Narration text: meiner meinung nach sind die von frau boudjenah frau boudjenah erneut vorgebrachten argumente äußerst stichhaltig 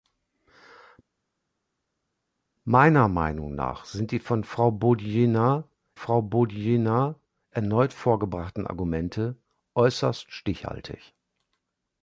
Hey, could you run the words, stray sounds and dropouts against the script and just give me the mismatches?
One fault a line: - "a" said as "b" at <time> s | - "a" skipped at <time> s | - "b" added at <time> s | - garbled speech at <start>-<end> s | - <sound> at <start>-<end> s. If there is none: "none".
none